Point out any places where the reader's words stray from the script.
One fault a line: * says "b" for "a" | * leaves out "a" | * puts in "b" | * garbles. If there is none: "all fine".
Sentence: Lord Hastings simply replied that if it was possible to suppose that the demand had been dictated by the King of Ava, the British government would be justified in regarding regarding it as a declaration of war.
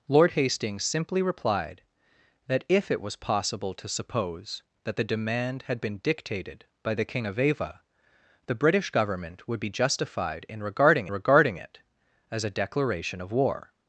all fine